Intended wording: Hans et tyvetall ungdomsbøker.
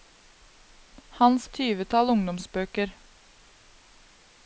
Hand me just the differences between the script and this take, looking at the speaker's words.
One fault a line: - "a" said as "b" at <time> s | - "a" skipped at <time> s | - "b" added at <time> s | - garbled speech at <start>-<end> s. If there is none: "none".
none